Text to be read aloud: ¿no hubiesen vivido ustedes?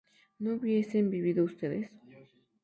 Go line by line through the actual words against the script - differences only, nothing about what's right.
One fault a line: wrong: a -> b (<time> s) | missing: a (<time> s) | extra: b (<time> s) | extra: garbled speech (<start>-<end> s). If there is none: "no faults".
no faults